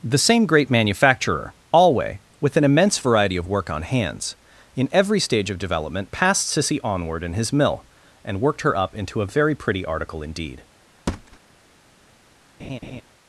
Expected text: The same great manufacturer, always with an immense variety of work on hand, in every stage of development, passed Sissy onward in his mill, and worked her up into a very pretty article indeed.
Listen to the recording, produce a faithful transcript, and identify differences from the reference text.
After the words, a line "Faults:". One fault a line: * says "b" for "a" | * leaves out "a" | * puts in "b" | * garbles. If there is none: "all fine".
The same great manufacturer, alway with an immense variety of work on hands, in every stage of development, passed Sissy onward in his mill, and worked her up into a very pretty article indeed.
Faults:
* says "alway" for "always"
* says "hands" for "hand"